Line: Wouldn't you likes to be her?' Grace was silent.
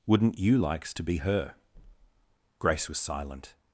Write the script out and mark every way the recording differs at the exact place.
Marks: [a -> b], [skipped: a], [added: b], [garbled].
Wouldn't you likes to be her?' Grace was silent.